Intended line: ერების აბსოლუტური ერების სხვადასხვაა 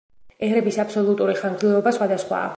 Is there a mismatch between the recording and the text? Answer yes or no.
yes